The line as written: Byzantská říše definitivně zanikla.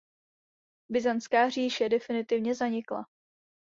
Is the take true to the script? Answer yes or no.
yes